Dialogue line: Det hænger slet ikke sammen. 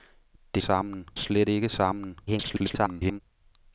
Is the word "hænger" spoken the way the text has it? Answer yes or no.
no